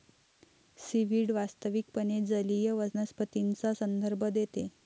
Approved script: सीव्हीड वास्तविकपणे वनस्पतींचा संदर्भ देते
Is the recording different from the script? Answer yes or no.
yes